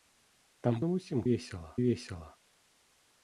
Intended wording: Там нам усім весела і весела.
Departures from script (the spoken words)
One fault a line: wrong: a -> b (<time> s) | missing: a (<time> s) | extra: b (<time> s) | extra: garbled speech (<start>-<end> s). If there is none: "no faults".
no faults